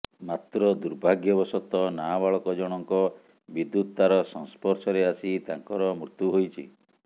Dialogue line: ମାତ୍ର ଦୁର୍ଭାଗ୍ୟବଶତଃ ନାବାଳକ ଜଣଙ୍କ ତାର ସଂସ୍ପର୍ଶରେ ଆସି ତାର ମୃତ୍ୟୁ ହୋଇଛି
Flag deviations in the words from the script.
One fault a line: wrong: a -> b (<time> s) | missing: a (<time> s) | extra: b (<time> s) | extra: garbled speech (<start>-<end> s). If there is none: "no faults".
extra: ବିଦ୍ୟୁତ (3.5 s)
wrong: ତାର -> ତାଙ୍କର (5.5 s)